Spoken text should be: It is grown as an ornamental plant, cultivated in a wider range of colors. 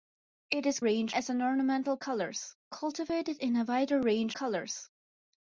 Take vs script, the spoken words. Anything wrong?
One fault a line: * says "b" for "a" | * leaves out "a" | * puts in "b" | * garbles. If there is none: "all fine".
* says "range" for "grown"
* says "colors" for "plant"
* leaves out "of"